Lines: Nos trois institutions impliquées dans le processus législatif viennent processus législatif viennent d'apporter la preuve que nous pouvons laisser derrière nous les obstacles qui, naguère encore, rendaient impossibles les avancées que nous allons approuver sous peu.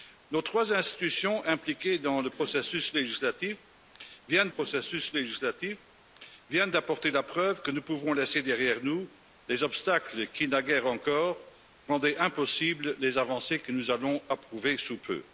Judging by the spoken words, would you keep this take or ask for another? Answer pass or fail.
pass